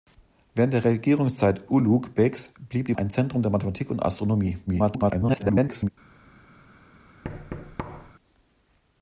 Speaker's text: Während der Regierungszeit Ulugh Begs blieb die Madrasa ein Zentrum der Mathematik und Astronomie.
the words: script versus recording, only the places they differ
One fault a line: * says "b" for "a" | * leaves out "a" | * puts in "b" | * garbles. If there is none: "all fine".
* leaves out "Madrasa"
* garbles